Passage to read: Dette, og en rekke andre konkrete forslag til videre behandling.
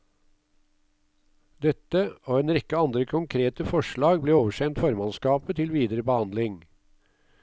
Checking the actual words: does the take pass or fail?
fail